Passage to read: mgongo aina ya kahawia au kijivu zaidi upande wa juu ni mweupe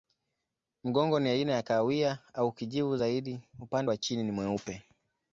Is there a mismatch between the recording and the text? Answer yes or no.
yes